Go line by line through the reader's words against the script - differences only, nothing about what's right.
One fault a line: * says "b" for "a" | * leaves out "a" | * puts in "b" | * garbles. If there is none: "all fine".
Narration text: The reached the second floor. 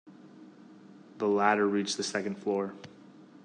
* puts in "ladder"